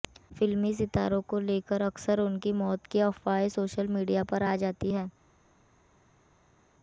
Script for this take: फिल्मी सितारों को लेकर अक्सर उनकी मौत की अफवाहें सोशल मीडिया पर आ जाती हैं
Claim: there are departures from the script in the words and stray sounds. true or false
false